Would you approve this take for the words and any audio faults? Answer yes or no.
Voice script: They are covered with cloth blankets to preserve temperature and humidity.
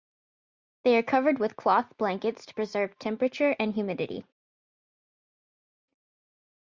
yes